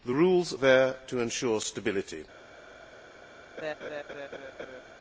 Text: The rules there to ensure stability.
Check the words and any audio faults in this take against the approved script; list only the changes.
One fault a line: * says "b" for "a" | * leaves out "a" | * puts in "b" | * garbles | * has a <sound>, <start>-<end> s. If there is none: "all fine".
* has a laugh, 3.6-4.8 s